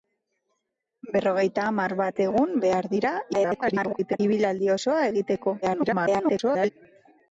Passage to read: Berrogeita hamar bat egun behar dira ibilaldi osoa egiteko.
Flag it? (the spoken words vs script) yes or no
yes